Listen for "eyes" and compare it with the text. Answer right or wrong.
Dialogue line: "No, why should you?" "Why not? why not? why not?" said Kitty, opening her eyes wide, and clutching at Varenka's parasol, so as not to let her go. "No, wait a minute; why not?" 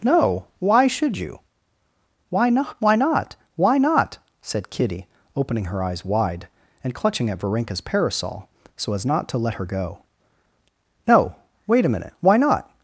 right